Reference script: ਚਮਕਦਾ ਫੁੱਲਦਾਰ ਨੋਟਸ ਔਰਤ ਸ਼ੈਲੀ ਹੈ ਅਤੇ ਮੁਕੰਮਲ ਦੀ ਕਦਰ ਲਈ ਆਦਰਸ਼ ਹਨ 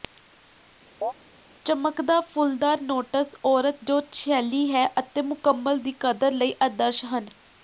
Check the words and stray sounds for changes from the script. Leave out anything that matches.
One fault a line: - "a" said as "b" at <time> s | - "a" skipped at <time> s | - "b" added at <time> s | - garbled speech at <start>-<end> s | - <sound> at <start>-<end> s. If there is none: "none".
- chirp at 1.0-1.1 s
- "ਜੋ" added at 3.8 s